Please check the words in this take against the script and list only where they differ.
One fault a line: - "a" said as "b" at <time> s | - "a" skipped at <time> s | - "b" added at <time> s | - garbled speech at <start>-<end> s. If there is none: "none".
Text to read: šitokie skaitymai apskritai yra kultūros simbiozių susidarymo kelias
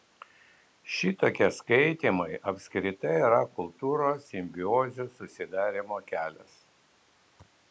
none